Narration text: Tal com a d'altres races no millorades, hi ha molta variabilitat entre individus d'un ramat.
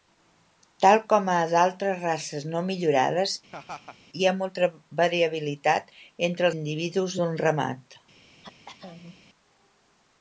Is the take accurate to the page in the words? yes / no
yes